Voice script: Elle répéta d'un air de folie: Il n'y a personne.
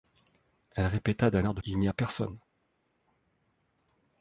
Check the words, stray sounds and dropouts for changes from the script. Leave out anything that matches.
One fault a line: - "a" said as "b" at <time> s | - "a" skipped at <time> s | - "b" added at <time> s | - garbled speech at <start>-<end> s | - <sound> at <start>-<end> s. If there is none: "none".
- "folie" skipped at 1.6 s